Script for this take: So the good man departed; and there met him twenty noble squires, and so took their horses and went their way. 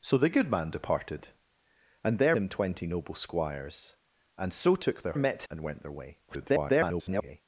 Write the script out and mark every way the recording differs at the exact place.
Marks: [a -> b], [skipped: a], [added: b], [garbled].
So the good man departed; and there [skipped: met] him twenty noble squires, and so took their [horses -> met] and went their way. [garbled]